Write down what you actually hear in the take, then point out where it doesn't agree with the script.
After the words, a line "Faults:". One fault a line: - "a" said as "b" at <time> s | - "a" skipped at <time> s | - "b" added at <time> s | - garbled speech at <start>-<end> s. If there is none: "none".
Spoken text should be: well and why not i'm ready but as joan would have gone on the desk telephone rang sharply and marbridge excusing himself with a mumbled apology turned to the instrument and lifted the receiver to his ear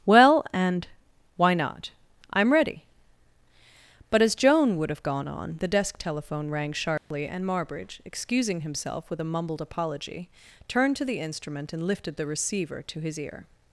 well and why not i'm ready but as joan would have gone on the desk telephone rang sharply and marbridge excusing himself with a mumbled apology turned to the instrument and lifted the receiver to his ear
Faults:
none